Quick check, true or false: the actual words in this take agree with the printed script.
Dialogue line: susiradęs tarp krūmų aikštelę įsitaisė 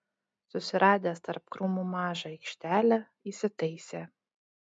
false